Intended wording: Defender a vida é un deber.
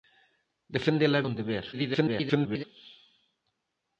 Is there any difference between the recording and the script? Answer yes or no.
yes